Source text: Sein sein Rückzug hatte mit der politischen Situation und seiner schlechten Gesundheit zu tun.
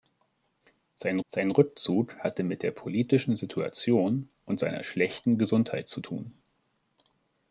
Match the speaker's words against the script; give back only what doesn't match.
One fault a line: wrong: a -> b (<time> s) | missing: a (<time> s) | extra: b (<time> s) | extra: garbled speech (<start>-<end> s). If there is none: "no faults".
no faults